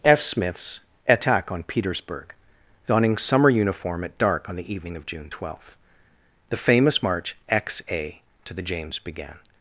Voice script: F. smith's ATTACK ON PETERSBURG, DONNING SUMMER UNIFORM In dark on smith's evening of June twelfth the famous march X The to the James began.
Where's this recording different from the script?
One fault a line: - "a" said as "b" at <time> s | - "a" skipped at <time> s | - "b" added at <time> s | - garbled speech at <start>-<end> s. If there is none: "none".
- "In" said as "AT" at 4.0 s
- "smith's" said as "the" at 4.5 s
- "The" said as "A" at 7.9 s